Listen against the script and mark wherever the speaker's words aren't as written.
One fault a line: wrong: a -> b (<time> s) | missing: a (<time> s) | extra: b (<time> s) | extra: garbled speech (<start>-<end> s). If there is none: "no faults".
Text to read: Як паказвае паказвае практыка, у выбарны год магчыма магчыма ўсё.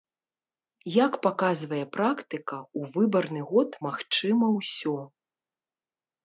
missing: паказвае (1.8 s)
missing: магчыма (4.5 s)